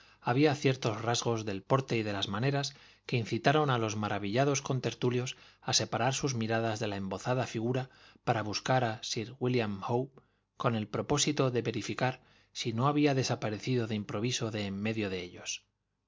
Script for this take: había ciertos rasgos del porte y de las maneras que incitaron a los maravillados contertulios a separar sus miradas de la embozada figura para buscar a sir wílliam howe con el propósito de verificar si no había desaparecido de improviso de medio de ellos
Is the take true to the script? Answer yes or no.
no